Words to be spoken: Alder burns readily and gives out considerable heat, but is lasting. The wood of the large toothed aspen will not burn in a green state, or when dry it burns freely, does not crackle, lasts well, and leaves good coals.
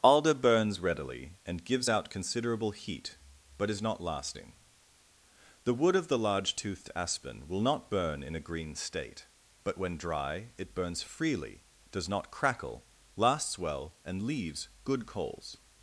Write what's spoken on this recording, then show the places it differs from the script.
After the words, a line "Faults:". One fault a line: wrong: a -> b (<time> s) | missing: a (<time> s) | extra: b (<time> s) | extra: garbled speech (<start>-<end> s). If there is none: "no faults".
Alder burns readily and gives out considerable heat, but is not lasting. The wood of the large toothed aspen will not burn in a green state, but when dry it burns freely, does not crackle, lasts well, and leaves good coals.
Faults:
extra: not (3.8 s)
wrong: or -> but (9.6 s)